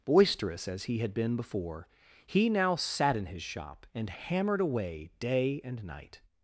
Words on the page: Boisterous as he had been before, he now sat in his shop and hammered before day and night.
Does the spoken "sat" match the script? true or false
true